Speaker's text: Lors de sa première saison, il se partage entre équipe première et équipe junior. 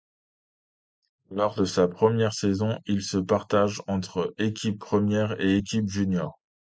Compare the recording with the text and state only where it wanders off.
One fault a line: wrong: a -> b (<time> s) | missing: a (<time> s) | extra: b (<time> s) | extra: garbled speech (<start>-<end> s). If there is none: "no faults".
no faults